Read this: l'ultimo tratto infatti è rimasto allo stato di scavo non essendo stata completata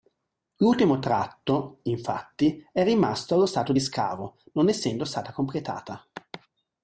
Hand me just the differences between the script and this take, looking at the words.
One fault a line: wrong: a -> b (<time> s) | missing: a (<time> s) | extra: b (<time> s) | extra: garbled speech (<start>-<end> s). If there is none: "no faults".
no faults